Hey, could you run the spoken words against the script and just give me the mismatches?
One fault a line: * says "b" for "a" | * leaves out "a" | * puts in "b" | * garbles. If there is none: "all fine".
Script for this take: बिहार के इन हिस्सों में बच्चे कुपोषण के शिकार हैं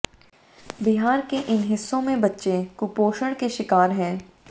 all fine